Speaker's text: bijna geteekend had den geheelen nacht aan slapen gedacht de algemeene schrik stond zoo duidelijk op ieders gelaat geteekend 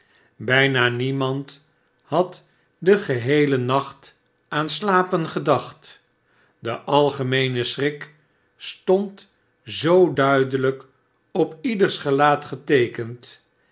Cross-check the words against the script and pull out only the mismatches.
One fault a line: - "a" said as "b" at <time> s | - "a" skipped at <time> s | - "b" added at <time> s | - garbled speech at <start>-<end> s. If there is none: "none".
- "geteekend" said as "niemand" at 0.9 s